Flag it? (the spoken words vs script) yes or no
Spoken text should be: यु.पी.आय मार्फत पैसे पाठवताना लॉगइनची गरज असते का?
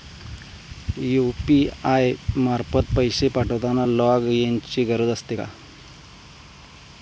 no